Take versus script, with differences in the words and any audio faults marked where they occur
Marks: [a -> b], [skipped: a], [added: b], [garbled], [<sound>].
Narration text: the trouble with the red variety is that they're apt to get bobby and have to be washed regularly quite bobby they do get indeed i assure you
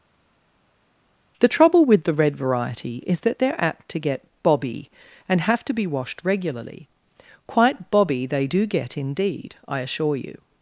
the trouble with the red variety is that they're apt to get bobby and have to be washed regularly quite bobby they do get indeed i assure you